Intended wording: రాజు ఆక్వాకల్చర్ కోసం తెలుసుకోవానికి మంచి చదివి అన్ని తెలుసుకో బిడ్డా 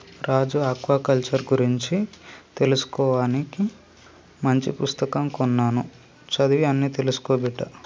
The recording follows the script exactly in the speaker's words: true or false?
false